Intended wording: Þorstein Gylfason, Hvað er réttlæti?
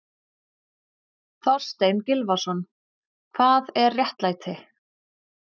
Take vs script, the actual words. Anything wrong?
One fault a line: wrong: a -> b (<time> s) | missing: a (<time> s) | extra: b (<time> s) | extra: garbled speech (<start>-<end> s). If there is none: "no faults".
no faults